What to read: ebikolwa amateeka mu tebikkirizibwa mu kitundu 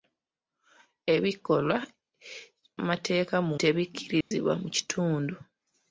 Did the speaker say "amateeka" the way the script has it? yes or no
yes